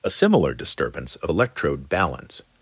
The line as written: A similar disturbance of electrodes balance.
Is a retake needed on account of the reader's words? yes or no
yes